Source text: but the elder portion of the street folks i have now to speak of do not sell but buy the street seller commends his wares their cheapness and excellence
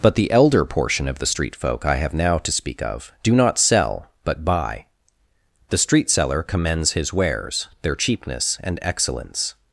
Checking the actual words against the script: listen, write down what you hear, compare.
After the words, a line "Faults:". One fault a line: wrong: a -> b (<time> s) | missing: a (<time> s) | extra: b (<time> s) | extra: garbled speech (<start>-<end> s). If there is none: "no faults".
but the elder portion of the street folk i have now to speak of do not sell but buy the street seller commends his wares their cheapness and excellence
Faults:
wrong: folks -> folk (1.6 s)